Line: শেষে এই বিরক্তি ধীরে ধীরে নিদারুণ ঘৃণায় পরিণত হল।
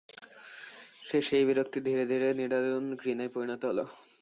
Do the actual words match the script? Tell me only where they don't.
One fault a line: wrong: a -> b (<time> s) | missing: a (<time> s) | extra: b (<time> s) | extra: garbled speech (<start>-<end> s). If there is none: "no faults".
no faults